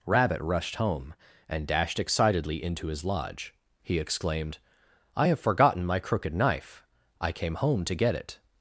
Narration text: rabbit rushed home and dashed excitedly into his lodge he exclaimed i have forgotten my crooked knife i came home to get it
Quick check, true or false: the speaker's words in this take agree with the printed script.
true